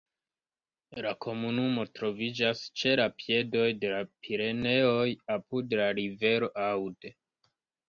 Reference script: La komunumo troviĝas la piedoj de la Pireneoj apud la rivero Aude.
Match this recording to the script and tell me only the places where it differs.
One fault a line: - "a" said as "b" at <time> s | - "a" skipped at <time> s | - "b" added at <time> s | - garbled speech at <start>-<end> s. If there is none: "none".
- "ĉe" added at 2.8 s